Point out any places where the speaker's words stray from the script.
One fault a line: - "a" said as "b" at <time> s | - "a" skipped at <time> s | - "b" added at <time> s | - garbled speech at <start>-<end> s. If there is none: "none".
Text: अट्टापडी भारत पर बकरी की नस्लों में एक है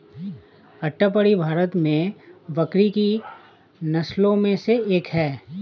- "पर" said as "में" at 1.8 s
- "से" added at 4.6 s